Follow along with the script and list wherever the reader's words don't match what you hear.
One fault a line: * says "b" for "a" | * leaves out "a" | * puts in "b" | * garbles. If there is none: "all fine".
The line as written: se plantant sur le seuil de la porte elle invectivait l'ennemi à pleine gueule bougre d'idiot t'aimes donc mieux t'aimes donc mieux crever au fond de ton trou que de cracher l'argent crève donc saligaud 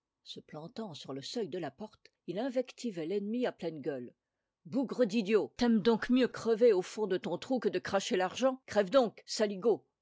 * says "il" for "elle"
* leaves out "t'aimes donc mieux"